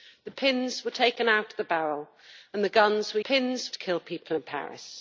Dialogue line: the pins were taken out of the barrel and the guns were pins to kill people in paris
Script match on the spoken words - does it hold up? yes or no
yes